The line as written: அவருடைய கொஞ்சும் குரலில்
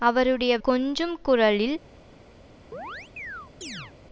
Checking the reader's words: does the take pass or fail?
pass